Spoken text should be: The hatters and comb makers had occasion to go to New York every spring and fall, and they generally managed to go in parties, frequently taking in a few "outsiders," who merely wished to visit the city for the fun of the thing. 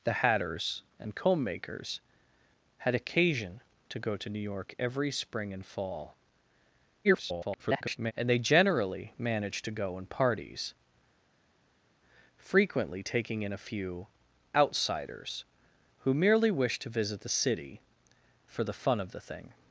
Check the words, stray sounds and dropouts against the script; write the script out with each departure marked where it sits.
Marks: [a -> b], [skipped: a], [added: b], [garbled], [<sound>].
The hatters and comb makers had occasion to go to New York every spring and fall, [garbled] and they generally managed to go in parties, frequently taking in a few "outsiders," who merely wished to visit the city for the fun of the thing.